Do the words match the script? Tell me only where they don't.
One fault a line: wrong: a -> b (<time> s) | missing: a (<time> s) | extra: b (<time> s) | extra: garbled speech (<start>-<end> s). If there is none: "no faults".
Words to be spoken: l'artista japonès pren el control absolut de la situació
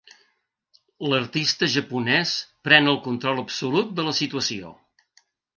no faults